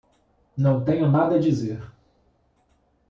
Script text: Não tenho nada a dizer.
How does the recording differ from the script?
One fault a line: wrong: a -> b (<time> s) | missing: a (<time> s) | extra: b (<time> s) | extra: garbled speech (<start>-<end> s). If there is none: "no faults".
no faults